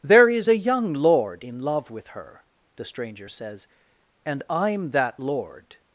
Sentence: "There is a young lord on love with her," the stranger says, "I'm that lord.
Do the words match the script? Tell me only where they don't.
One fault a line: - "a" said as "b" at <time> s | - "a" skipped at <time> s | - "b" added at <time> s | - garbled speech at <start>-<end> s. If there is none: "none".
- "on" said as "in" at 1.4 s
- "and" added at 4.2 s